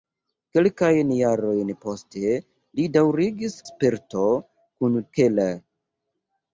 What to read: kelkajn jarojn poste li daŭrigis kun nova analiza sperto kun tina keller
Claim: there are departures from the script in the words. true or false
true